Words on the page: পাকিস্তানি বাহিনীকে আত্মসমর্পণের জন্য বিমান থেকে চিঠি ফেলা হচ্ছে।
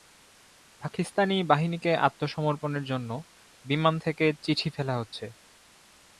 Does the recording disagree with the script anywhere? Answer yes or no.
no